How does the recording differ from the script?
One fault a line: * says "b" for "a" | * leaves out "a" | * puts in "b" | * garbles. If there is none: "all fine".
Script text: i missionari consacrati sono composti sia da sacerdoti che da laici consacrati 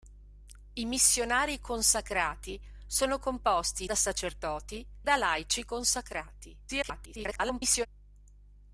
* leaves out "sia"
* leaves out "che"
* garbles